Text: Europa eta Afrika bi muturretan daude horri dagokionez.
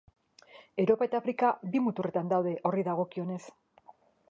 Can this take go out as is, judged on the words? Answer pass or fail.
pass